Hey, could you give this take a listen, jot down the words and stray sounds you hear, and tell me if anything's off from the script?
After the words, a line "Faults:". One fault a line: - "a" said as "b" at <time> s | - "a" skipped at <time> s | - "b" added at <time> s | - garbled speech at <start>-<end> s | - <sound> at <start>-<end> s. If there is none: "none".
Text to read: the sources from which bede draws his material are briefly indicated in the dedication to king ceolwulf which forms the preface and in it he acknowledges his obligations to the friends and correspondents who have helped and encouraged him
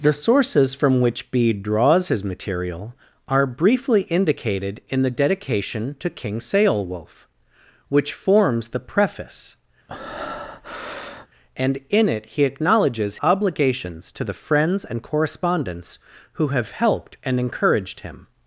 the sources from which bede draws his material are briefly indicated in the dedication to king ceolwulf which forms the preface and in it he acknowledges obligations to the friends and correspondents who have helped and encouraged him
Faults:
- breath at 9.9-11.3 s
- "his" skipped at 13.2 s